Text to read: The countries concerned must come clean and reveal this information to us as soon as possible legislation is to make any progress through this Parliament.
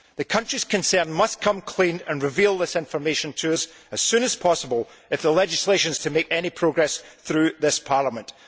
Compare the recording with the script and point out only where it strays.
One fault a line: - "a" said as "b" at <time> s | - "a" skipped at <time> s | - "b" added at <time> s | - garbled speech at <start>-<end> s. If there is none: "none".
- "if the" added at 5.1 s